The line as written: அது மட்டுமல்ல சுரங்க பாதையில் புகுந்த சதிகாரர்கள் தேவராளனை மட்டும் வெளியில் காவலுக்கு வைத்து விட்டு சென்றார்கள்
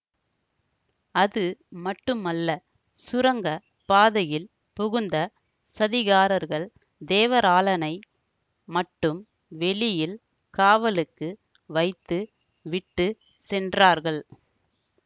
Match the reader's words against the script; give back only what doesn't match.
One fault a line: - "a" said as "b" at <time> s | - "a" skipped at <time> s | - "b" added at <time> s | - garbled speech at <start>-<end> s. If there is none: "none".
none